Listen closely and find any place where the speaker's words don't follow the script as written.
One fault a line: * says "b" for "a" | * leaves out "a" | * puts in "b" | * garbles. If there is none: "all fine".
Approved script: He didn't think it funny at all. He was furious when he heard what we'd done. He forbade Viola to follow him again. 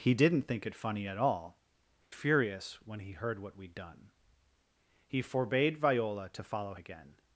* leaves out "He was"
* leaves out "him"